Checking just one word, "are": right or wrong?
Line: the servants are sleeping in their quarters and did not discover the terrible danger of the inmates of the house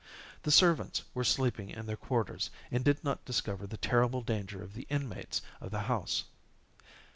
wrong